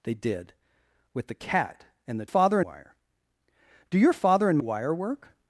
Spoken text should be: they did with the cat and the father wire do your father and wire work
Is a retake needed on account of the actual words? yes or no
no